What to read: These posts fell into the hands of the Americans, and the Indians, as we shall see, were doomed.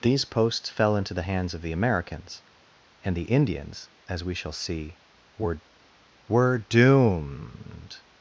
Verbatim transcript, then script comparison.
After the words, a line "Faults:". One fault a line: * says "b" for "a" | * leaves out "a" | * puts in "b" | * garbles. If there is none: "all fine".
These posts fell into the hands of the Americans, and the Indians, as we shall see, were were doomed.
Faults:
* puts in "were"